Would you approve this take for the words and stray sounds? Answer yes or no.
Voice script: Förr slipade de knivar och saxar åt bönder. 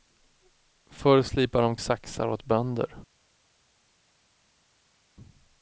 no